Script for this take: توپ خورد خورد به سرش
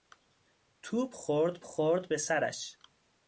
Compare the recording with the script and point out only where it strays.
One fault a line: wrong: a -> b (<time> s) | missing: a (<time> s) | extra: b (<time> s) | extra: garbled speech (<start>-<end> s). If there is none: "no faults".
no faults